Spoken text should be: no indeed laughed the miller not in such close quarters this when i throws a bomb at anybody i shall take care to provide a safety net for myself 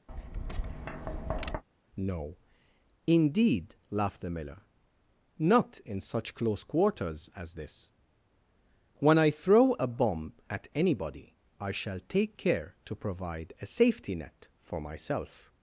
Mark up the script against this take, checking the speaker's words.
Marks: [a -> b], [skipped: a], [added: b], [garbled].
no indeed laughed the miller not in such close quarters [added: as] this when i [throws -> throw] a bomb at anybody i shall take care to provide a safety net for myself